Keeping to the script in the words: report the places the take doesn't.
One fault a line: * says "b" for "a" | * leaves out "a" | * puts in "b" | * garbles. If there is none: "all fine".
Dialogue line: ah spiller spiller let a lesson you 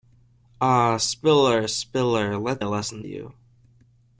all fine